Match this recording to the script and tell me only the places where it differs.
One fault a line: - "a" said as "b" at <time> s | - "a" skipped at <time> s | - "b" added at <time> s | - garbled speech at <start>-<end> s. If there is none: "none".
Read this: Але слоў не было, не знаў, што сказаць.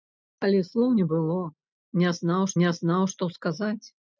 - "не знаў" added at 2.6 s